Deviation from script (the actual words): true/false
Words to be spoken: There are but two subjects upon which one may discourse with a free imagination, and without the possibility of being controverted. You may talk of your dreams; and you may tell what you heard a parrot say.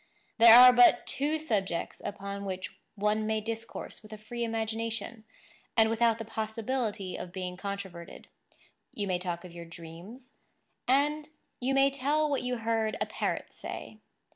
false